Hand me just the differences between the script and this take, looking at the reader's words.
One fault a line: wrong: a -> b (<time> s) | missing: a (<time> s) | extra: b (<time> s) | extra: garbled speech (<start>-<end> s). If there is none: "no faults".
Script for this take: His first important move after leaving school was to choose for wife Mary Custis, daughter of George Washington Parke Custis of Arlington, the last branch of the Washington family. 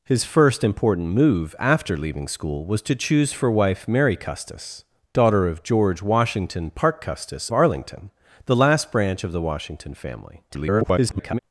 missing: of (7.5 s)
extra: garbled speech (10.5-11.4 s)